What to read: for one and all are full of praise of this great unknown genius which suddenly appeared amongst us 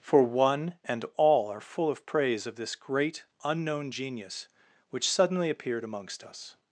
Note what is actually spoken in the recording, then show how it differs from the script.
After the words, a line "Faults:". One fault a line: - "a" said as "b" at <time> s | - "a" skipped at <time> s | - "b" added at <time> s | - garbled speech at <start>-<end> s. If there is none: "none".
for one and all are full of praise of this great unknown genius which suddenly appeared amongst us
Faults:
none